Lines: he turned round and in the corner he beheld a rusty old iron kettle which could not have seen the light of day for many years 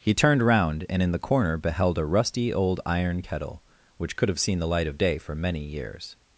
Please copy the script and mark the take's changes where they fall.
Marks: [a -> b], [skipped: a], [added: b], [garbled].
he turned round and in the corner [skipped: he] beheld a rusty old iron kettle which could [skipped: not] have seen the light of day for many years